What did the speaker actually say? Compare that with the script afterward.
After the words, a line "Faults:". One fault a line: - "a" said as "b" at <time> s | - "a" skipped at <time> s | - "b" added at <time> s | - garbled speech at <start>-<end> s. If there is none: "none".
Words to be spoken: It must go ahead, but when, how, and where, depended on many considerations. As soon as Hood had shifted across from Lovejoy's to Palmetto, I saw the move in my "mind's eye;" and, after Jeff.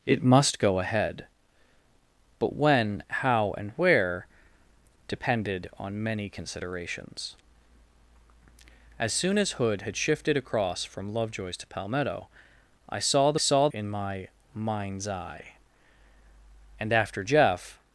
It must go ahead, but when, how, and where, depended on many considerations. As soon as Hood had shifted across from Lovejoy's to Palmetto, I saw the saw in my "mind's eye;" and, after Jeff.
Faults:
- "move" said as "saw" at 13.3 s